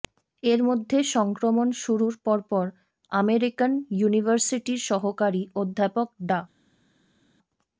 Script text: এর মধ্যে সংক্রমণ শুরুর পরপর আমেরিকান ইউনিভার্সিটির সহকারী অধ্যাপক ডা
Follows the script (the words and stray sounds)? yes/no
yes